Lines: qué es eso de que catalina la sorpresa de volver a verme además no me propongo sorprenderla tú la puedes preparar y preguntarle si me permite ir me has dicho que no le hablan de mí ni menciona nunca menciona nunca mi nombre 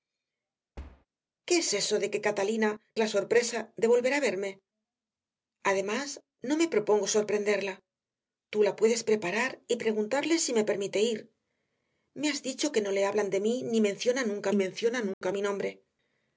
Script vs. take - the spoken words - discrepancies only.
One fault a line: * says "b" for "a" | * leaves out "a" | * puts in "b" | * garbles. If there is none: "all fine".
all fine